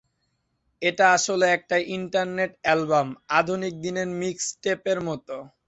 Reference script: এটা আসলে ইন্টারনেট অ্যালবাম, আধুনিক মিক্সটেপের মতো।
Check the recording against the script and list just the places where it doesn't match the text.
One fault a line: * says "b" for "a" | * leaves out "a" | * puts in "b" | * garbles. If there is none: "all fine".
* puts in "একটা"
* puts in "দিনের"